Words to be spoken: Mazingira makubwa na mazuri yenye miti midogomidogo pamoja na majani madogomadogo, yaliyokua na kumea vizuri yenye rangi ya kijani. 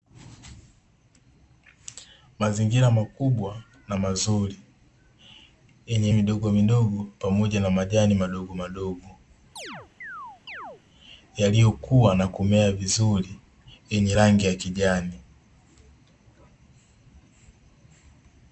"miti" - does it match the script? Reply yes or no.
no